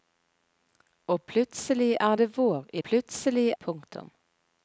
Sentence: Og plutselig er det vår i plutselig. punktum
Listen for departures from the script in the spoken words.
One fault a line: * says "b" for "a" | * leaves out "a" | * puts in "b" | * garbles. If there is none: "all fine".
all fine